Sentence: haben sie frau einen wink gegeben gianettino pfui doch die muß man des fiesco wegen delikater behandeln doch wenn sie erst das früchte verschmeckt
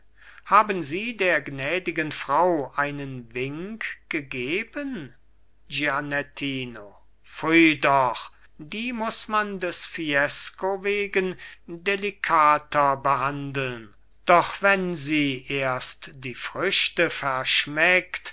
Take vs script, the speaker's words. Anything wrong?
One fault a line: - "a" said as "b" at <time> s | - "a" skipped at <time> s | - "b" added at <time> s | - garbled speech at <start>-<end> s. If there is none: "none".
- "der gnädigen" added at 1.1 s
- "das" said as "die" at 16.1 s